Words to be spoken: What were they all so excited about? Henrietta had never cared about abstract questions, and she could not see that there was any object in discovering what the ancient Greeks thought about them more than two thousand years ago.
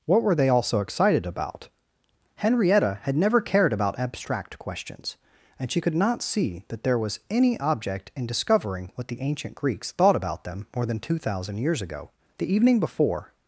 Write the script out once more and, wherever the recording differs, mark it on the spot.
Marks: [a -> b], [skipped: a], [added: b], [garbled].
What were they all so excited about? Henrietta had never cared about abstract questions, and she could not see that there was any object in discovering what the ancient Greeks thought about them more than two thousand years ago. [added: The evening before]